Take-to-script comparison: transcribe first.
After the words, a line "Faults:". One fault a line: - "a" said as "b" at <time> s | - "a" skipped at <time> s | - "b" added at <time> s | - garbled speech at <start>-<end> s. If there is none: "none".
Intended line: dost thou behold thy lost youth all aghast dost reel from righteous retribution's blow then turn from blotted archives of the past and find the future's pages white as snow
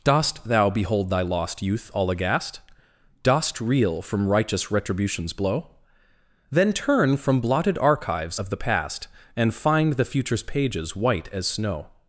dost thou behold thy lost youth all aghast dost reel from righteous retribution's blow then turn from blotted archives of the past and find the future's pages white as snow
Faults:
none